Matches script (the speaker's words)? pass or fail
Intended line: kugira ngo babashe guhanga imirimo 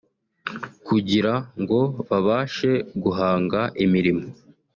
pass